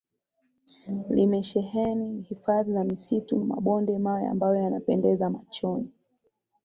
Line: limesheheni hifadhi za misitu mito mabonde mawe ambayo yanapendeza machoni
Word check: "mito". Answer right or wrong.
wrong